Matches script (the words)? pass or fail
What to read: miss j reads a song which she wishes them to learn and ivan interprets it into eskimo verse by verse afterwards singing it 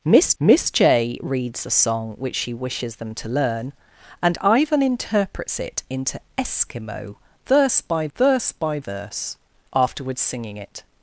fail